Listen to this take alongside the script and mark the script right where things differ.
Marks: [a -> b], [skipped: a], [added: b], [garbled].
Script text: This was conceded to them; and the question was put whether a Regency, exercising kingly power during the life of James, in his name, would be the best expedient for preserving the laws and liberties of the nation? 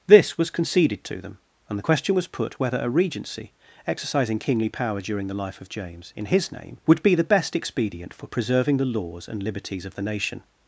This was conceded to them; and the question was put whether a Regency, exercising kingly power during the life of James, in his name, would be the best expedient for preserving the laws and liberties of the nation?